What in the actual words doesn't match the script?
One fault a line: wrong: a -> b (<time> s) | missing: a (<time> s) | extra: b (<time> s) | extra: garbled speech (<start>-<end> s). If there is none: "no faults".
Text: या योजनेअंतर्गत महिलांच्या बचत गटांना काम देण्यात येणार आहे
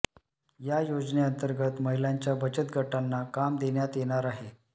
no faults